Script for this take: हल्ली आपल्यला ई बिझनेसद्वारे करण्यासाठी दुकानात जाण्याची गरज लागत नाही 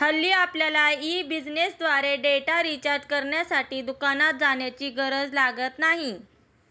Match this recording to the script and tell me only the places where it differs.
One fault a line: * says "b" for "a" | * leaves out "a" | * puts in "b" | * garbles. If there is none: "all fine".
* puts in "डेटा रिचार्ज"